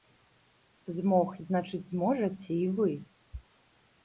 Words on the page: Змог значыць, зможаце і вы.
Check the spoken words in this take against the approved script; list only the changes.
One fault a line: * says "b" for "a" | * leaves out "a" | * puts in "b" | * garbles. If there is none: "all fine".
all fine